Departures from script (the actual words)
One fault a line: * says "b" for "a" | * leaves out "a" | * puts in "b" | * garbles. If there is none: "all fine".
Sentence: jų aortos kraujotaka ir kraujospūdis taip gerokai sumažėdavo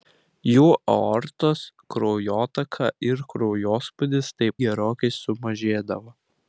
all fine